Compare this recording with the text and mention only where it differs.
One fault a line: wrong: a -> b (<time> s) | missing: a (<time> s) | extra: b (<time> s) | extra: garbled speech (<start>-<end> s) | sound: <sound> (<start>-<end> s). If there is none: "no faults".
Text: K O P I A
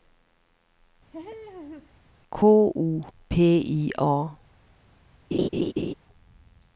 sound: laugh (1.1-2.0 s)
sound: laugh (5.3-5.9 s)